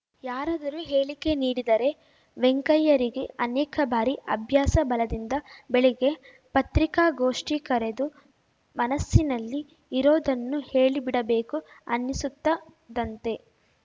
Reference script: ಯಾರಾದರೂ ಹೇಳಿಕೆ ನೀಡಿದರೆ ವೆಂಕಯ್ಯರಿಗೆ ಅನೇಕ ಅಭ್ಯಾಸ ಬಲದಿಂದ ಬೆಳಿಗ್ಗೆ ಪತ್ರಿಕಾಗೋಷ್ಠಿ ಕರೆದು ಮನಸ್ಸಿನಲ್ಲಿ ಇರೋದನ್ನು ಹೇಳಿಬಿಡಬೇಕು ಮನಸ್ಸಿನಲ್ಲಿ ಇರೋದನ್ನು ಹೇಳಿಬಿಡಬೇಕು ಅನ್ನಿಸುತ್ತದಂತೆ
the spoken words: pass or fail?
fail